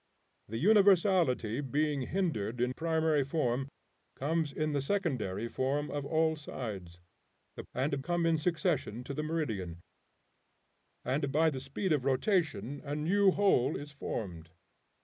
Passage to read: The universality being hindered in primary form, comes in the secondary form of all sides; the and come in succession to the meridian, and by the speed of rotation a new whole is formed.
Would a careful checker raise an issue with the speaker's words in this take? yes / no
no